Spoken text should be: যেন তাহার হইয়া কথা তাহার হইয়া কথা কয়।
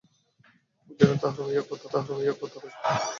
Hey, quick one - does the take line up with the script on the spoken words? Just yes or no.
yes